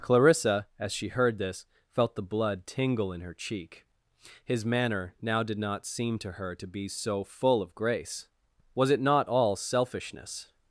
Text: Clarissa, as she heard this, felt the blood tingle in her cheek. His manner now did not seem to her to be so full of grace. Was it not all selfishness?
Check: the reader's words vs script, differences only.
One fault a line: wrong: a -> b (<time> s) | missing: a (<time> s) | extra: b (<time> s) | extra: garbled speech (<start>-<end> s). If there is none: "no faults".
no faults